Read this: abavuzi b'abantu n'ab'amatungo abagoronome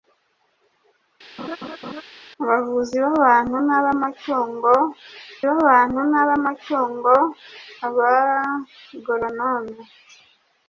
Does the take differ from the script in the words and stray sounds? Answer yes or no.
yes